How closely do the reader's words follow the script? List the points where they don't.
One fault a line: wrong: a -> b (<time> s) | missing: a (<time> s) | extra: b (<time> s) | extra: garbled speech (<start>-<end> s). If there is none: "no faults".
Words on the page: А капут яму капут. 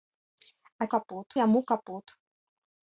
no faults